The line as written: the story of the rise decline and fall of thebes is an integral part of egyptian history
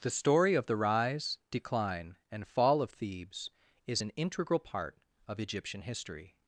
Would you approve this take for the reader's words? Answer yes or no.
yes